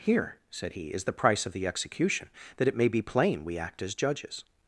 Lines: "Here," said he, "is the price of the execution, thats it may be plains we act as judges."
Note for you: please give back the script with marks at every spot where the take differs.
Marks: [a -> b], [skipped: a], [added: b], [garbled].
"Here," said he, "is the price of the execution, [thats -> that] it may be [plains -> plain] we act as judges."